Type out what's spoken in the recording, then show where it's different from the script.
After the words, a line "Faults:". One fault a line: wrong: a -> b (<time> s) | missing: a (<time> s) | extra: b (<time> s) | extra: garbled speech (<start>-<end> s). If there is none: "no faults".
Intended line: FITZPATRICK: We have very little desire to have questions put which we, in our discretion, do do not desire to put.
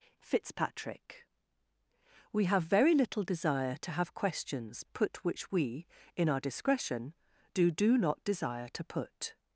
FITZPATRICK: We have very little desire to have questions put which we, in our discretion, do do not desire to put.
Faults:
no faults